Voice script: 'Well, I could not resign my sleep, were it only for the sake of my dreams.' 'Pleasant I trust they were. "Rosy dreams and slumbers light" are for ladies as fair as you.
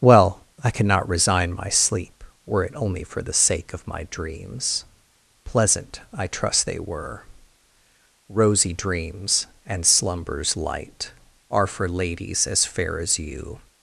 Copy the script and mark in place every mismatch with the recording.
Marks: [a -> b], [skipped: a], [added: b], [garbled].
'Well, I [could not -> cannot] resign my sleep, were it only for the sake of my dreams.' 'Pleasant I trust they were. "Rosy dreams and slumbers light" are for ladies as fair as you.